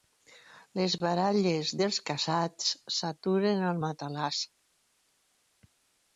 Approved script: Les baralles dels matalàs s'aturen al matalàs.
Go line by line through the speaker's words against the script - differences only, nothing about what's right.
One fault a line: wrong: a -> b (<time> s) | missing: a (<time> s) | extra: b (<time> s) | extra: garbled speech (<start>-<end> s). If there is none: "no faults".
wrong: matalàs -> casats (2.1 s)